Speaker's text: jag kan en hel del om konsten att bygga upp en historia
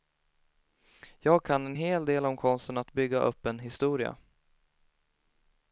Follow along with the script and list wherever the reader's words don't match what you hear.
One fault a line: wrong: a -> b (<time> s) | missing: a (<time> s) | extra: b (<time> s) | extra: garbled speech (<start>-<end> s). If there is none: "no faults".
no faults